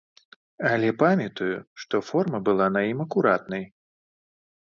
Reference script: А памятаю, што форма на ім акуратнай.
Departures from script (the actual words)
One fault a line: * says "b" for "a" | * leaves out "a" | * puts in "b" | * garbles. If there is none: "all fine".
* says "Але" for "А"
* puts in "была"